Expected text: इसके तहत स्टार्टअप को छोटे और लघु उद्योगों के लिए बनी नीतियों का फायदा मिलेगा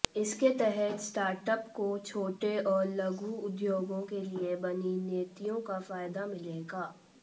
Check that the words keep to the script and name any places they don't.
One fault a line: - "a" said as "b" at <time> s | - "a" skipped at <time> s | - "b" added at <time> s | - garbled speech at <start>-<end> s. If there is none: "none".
none